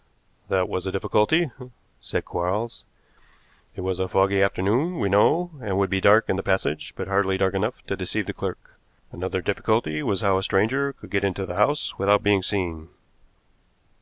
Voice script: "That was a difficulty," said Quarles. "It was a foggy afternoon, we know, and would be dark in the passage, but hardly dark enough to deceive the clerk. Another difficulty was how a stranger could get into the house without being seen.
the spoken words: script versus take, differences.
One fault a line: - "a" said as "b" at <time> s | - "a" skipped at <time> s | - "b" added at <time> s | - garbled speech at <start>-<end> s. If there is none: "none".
none